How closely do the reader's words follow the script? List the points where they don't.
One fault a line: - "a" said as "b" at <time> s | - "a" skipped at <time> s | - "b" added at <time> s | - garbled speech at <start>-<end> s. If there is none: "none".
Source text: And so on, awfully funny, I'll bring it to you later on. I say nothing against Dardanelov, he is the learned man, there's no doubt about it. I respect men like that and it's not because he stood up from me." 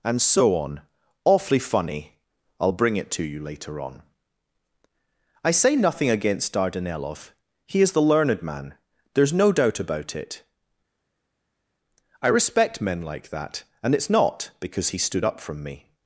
none